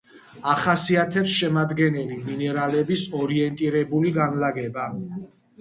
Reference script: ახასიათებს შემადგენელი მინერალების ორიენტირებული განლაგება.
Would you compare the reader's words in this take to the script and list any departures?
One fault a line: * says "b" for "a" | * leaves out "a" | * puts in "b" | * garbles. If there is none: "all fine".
all fine